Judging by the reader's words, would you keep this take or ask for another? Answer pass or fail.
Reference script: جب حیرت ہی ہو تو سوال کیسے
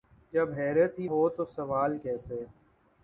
pass